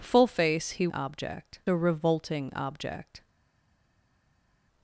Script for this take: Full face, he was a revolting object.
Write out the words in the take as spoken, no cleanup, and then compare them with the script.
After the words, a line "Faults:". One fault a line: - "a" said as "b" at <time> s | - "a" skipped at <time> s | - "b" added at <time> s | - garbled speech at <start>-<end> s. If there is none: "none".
Full face, he object a revolting object.
Faults:
- "was" said as "object" at 0.9 s